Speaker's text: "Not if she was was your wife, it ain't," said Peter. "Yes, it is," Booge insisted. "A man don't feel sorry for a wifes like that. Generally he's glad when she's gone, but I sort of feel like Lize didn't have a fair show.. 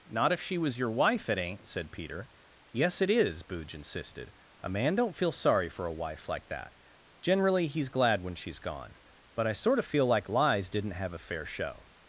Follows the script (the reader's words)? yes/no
no